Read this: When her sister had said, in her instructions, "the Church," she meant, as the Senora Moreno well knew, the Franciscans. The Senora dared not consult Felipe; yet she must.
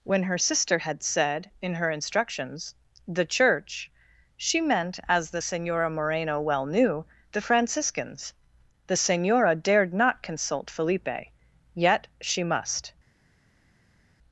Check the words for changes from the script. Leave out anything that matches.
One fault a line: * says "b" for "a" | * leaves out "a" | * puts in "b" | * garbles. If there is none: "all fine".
all fine